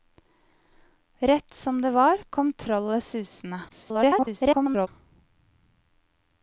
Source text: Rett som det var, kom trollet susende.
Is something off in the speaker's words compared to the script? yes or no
yes